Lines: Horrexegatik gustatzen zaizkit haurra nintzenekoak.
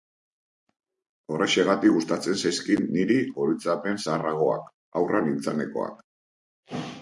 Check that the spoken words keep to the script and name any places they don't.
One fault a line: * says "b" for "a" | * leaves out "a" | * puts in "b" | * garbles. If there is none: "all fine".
* puts in "niri oroitzapen zaharragoak"